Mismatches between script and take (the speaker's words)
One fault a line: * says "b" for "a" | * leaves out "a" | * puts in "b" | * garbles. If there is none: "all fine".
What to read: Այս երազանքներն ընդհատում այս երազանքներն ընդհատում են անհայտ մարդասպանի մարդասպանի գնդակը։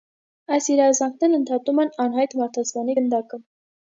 * leaves out "այս երազանքներն ընդհատում"
* leaves out "մարդասպանի"